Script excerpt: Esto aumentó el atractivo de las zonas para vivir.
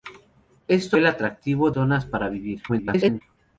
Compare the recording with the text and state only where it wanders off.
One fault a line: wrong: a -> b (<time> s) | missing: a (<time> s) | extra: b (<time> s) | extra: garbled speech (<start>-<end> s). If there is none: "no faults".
missing: aumentó (1.0 s)
missing: de las (1.7 s)
extra: garbled speech (2.7-3.2 s)